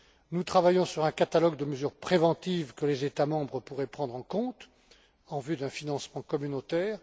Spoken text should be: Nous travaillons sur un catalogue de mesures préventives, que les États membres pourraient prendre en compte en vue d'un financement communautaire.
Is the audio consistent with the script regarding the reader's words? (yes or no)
yes